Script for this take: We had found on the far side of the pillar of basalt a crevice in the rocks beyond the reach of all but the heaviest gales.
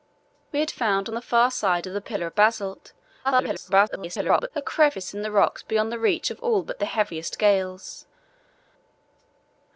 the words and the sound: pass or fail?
fail